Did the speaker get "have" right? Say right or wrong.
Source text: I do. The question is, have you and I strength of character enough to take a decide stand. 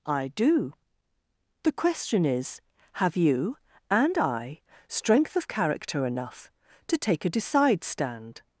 right